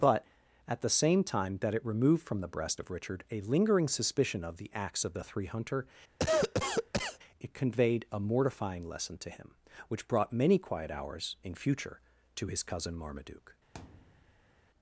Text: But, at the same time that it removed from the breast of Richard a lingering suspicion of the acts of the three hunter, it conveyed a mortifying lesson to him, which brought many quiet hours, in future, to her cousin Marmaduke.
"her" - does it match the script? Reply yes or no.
no